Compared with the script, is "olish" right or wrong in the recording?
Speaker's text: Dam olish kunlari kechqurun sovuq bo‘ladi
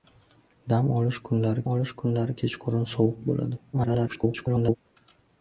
right